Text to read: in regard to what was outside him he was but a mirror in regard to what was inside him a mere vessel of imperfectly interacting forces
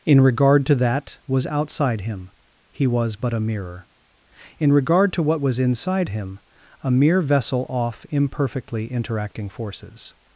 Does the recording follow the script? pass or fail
fail